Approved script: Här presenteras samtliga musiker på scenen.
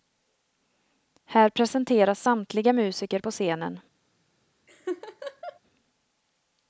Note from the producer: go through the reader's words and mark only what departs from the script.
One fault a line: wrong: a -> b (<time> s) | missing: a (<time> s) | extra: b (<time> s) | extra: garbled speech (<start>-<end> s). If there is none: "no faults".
no faults